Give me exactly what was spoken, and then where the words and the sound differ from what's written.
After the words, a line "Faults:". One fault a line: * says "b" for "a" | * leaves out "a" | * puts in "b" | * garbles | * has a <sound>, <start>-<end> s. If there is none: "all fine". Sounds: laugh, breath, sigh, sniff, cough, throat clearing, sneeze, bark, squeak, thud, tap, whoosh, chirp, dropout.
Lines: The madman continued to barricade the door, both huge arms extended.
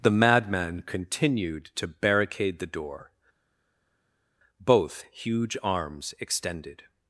The madman continued to barricade the door, both huge arms extended.
Faults:
all fine